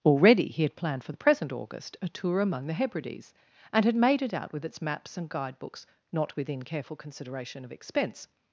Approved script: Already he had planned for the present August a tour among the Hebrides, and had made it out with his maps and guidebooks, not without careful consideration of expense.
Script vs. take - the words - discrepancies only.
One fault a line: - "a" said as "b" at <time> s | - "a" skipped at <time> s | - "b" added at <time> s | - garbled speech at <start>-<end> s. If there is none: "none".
- "his" said as "its" at 4.6 s
- "without" said as "within" at 6.4 s